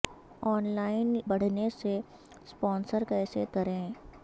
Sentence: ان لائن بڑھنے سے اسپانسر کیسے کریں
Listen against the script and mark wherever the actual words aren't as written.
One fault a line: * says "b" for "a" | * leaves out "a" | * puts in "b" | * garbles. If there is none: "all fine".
all fine